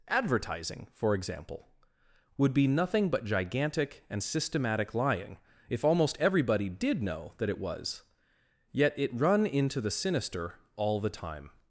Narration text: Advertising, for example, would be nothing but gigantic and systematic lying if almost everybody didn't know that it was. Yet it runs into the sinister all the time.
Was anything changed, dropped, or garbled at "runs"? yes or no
yes